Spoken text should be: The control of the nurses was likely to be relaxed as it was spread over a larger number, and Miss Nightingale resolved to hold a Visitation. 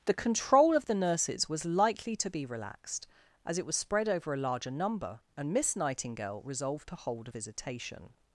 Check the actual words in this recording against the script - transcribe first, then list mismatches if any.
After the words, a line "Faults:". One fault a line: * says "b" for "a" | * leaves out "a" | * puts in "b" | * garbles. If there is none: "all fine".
The control of the nurses was likely to be relaxed as it was spread over a larger number, and Miss Nightingale resolved to hold a Visitation.
Faults:
all fine